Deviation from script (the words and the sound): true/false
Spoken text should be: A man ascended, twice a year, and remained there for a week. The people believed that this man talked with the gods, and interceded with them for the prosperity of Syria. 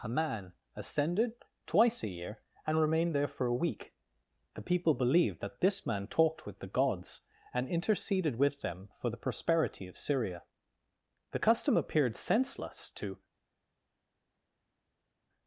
true